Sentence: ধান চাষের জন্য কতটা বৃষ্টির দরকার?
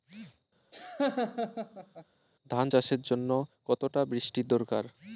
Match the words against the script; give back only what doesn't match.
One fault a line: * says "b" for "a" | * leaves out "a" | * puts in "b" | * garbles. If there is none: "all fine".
all fine